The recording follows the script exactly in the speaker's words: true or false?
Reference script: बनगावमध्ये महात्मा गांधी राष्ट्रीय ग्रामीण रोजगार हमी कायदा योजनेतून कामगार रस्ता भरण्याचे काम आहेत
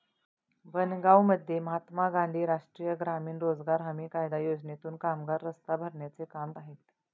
true